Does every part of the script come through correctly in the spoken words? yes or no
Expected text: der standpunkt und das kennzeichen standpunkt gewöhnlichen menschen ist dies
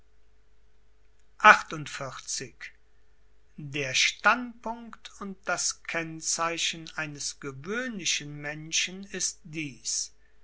no